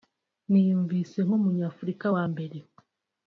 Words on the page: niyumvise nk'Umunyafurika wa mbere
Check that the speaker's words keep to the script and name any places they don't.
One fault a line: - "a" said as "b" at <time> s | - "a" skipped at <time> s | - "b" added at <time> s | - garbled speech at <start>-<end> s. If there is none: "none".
none